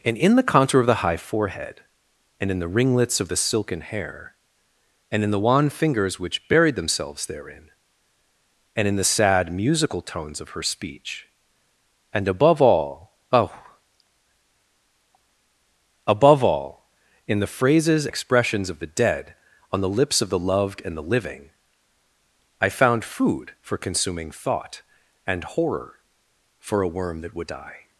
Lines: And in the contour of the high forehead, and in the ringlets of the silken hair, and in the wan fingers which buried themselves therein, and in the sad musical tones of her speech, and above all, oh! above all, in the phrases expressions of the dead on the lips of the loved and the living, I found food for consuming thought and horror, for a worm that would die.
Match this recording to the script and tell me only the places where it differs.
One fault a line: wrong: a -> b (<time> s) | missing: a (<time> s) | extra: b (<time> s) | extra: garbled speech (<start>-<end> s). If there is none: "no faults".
no faults